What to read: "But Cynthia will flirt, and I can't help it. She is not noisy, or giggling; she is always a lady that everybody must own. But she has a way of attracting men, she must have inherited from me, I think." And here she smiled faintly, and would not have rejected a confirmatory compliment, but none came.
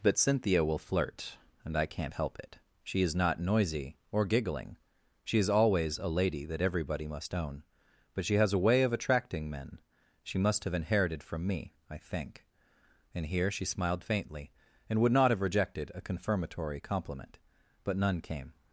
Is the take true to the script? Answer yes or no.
yes